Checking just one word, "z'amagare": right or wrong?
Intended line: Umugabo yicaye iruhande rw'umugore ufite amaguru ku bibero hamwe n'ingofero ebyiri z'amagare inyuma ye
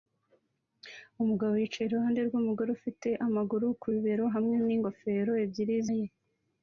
wrong